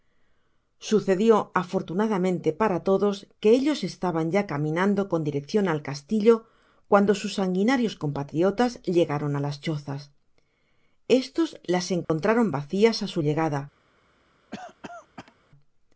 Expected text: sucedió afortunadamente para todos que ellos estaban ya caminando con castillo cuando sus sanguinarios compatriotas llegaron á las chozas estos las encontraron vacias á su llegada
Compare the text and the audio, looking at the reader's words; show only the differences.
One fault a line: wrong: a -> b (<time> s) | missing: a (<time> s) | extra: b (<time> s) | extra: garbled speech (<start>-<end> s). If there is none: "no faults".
extra: direccion al (5.2 s)